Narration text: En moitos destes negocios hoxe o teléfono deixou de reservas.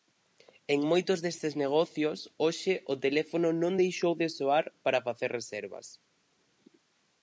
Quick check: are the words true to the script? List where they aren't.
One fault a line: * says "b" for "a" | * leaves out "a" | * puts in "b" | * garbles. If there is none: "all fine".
* puts in "non"
* puts in "soar para facer"